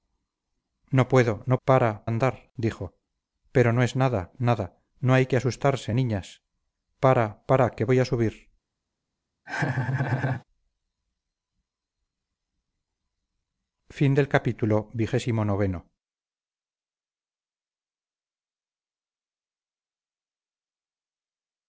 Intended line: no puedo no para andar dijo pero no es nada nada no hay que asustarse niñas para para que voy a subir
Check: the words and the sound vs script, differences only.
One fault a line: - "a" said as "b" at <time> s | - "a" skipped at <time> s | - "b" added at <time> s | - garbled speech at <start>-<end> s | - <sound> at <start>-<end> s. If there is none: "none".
- laugh at 9.5-10.4 s